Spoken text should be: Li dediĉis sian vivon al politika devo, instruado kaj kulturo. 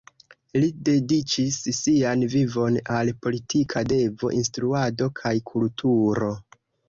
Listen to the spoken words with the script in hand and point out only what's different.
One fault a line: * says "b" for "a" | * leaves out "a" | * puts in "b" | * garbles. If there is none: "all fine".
all fine